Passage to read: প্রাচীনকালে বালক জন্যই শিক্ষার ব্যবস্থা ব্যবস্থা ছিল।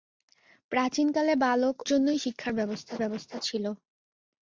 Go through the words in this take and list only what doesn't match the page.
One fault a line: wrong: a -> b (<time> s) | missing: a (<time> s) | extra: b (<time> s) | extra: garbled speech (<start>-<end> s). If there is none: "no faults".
no faults